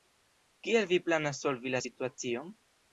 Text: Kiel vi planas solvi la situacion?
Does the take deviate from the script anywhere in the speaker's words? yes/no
no